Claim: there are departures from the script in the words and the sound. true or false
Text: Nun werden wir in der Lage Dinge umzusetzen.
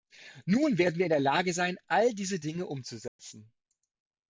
true